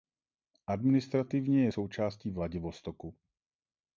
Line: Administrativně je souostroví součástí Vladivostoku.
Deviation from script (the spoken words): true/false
true